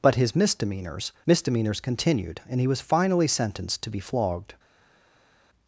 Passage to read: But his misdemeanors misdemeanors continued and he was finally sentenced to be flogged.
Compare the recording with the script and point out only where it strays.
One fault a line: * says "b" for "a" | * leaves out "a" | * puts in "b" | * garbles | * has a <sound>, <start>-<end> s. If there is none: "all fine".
all fine